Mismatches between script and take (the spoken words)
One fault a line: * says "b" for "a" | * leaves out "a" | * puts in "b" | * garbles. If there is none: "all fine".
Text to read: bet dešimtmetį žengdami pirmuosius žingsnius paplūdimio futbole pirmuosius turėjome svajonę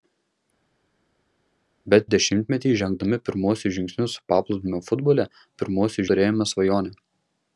all fine